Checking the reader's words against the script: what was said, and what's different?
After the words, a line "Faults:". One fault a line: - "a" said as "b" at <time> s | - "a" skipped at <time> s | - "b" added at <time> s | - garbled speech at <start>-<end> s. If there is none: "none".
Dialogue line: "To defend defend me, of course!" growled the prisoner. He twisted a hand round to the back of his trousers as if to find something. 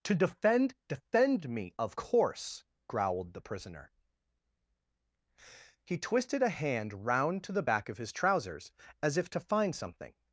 "To defend defend me, of course!" growled the prisoner. He twisted a hand round to the back of his trousers as if to find something.
Faults:
none